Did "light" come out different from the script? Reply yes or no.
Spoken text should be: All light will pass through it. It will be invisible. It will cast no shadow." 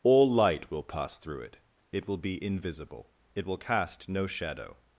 no